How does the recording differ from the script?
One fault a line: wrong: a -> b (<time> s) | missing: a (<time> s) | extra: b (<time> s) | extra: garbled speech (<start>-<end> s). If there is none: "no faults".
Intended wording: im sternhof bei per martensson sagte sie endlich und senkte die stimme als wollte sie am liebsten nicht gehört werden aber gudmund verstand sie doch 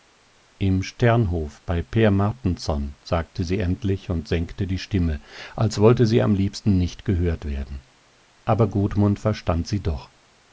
no faults